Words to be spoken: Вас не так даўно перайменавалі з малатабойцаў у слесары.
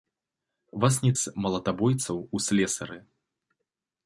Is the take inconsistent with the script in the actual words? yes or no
yes